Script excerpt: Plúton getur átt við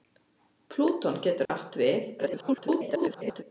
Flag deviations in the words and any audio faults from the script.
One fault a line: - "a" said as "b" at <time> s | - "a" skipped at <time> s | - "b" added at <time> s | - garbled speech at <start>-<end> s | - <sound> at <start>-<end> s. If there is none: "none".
- dropout at 1.5-1.5 s
- garbled speech at 2.2-3.4 s